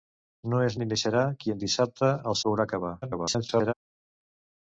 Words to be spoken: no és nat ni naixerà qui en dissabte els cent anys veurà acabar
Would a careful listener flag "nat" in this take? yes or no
yes